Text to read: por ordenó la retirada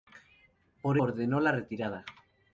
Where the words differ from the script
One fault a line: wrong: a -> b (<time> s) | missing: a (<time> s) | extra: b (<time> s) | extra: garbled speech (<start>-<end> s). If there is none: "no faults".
no faults